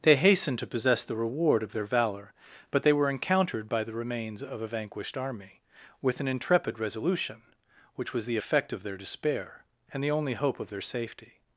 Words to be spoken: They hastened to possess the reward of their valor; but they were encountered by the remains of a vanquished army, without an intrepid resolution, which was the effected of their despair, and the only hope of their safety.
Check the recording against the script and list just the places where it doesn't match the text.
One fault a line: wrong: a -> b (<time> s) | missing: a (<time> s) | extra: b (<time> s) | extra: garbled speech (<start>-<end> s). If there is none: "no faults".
wrong: without -> with (6.0 s)
wrong: effected -> effect (8.3 s)